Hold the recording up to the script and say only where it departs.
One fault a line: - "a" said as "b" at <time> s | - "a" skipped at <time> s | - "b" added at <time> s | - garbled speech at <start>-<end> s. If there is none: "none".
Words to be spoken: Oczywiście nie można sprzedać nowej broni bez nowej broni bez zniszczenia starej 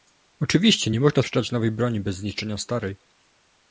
- "nowej broni bez" skipped at 2.2 s